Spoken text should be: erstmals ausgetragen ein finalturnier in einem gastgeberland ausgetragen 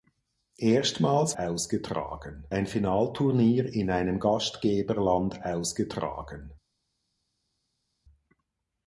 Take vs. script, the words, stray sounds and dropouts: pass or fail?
pass